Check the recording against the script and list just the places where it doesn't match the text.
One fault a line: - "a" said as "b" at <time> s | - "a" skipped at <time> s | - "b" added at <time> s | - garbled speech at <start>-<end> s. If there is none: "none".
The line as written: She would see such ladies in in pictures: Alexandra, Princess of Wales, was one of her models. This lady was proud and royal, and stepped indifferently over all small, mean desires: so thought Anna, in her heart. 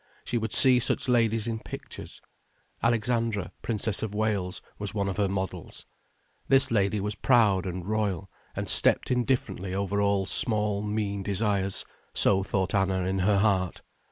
- "in" skipped at 1.6 s